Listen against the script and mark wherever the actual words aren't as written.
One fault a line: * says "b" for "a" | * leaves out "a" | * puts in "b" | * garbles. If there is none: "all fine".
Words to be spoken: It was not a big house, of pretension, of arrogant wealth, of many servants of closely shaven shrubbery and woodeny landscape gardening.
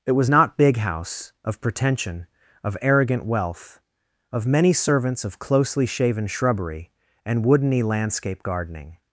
* leaves out "a"